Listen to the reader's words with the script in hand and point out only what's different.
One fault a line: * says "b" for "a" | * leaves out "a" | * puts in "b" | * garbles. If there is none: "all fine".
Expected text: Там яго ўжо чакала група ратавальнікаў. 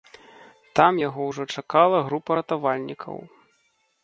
all fine